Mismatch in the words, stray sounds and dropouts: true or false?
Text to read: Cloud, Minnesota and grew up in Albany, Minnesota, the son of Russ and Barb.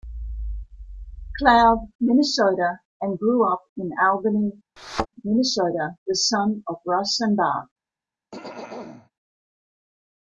true